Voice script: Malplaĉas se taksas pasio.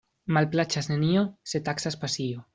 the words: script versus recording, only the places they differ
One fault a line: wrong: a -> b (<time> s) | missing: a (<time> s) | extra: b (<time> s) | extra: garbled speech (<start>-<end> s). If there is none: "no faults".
extra: nenio (0.9 s)